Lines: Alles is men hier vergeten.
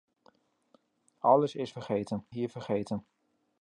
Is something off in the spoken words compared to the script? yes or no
yes